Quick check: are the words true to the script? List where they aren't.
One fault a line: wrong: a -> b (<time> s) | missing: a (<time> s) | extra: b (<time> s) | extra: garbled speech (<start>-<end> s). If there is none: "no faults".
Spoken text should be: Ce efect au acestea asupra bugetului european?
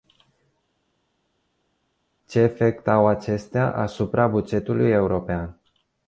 no faults